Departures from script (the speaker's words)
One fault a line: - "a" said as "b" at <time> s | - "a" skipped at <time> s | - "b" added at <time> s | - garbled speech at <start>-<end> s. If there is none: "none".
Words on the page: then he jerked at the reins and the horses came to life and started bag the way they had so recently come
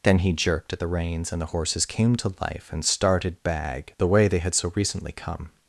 none